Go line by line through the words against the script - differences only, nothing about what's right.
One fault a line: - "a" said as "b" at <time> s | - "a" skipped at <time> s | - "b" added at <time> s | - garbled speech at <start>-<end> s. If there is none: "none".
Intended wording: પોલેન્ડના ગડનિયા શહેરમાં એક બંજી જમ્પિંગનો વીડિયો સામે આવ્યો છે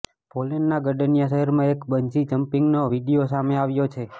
none